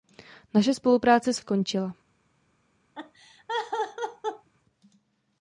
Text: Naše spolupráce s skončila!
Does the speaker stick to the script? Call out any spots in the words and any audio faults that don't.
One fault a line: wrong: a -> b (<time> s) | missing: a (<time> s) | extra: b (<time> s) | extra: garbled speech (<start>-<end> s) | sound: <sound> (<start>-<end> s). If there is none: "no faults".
sound: laugh (2.9-4.5 s)